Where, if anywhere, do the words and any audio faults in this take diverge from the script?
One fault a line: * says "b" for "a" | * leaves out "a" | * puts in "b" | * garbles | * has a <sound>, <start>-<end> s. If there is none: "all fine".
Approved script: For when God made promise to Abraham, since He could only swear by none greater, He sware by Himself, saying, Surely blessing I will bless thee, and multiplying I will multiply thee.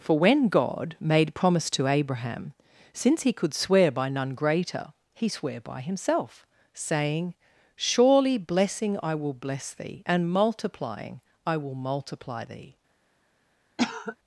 * leaves out "only"
* has a cough, 13.8-14.2 s